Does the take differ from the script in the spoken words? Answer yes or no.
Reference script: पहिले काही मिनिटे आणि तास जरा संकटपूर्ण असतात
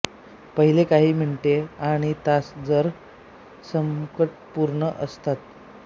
no